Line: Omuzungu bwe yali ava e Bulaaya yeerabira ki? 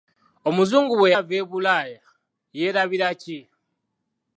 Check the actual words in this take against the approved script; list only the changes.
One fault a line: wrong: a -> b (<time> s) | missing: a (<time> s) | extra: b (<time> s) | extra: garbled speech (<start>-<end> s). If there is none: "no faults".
missing: yali (1.1 s)